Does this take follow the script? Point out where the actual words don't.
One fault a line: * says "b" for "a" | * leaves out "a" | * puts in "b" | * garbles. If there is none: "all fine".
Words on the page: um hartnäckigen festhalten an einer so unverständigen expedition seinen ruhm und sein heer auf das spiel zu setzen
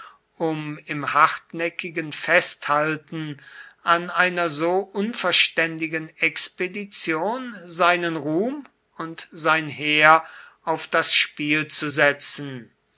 * puts in "im"